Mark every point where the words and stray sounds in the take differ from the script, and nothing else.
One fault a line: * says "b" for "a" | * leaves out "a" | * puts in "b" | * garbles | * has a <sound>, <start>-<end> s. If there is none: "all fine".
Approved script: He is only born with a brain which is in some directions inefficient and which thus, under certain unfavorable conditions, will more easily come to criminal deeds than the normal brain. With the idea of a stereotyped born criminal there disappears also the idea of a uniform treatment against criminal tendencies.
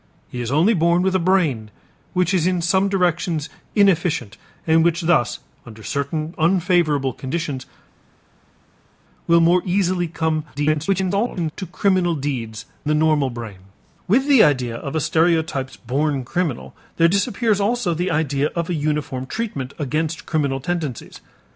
* garbles
* leaves out "than"